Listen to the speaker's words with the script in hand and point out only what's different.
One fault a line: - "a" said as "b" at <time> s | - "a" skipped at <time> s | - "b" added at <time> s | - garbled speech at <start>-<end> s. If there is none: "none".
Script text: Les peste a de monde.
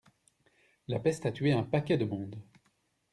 - "Les" said as "La" at 0.9 s
- "tué un paquet" added at 1.3 s